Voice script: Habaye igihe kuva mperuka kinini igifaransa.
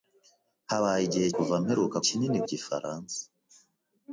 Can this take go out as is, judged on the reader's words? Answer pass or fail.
pass